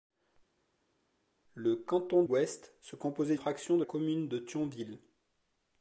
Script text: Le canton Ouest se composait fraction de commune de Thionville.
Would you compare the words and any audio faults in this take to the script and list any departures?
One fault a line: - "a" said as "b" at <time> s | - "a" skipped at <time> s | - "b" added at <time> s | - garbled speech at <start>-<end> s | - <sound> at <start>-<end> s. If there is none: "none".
none